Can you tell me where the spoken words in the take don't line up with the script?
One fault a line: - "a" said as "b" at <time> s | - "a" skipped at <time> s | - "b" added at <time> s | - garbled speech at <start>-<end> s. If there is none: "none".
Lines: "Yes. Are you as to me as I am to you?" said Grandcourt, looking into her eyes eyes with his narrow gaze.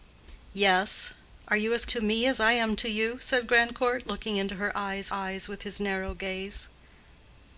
none